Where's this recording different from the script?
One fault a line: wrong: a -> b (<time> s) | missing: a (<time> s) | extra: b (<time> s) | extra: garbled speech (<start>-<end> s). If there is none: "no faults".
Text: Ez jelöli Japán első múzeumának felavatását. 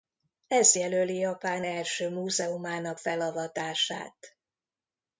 no faults